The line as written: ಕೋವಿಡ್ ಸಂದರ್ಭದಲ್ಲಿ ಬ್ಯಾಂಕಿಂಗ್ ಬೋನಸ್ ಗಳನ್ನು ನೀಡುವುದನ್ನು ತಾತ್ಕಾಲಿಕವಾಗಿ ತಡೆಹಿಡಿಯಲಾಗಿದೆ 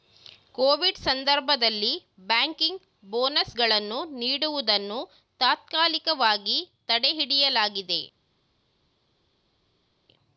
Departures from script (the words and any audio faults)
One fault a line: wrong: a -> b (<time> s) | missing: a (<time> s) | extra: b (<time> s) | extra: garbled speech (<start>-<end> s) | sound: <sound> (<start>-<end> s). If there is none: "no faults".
no faults